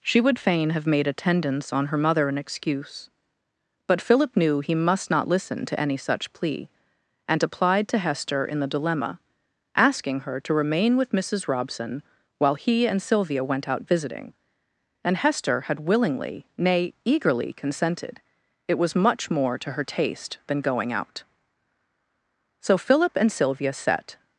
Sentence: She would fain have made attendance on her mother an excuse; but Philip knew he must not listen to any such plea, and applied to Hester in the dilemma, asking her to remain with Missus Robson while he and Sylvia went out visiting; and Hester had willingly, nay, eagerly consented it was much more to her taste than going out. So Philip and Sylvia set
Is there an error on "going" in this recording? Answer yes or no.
no